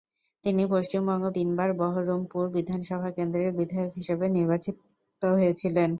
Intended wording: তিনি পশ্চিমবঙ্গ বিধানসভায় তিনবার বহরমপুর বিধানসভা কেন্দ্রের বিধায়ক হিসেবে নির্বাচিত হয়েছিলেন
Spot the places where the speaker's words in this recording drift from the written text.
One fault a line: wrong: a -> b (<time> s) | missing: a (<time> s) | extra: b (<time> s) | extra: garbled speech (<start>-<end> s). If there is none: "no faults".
missing: বিধানসভায় (1.2 s)